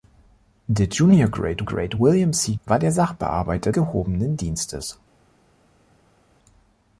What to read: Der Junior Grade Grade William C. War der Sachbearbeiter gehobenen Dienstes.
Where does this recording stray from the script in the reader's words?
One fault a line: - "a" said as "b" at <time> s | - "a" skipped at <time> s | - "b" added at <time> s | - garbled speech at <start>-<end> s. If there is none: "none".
none